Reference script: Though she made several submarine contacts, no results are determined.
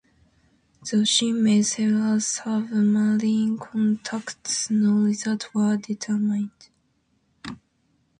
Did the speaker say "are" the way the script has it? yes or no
no